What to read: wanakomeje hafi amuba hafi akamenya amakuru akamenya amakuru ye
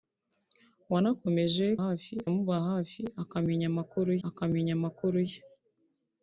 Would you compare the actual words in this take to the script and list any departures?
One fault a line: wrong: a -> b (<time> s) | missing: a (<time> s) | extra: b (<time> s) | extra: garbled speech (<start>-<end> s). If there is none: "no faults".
no faults